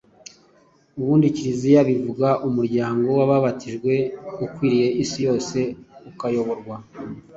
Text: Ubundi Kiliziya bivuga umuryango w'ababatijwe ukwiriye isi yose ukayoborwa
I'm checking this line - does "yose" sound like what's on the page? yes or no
yes